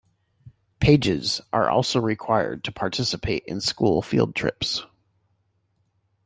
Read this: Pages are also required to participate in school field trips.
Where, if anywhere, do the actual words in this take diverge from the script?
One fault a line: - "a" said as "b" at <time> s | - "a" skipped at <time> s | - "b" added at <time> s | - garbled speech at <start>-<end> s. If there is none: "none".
none